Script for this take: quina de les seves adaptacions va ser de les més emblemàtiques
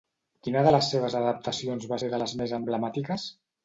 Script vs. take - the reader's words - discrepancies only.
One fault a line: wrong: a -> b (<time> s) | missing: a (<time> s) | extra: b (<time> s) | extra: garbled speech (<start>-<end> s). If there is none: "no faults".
no faults